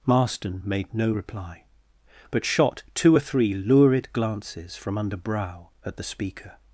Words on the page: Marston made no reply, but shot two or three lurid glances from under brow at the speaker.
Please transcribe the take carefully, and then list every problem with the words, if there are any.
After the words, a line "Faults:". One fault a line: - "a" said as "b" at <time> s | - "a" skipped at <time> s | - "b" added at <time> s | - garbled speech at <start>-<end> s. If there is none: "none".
Marston made no reply, but shot two or three lurid glances from under brow at the speaker.
Faults:
none